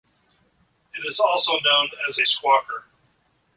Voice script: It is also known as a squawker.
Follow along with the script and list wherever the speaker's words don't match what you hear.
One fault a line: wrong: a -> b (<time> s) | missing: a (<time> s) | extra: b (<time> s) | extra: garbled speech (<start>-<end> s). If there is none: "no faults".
no faults